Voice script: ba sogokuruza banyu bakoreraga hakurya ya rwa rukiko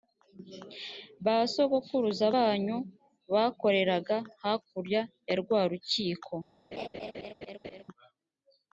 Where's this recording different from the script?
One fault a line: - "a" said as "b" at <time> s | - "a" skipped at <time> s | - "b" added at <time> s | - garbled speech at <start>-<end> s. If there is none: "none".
none